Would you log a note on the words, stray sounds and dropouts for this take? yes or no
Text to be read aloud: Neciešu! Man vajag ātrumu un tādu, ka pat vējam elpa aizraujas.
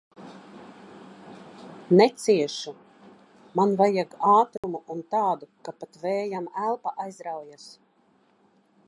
yes